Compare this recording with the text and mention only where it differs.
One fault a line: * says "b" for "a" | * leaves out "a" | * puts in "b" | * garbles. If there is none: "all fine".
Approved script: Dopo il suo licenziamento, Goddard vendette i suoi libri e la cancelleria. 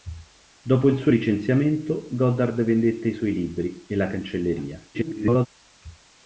* garbles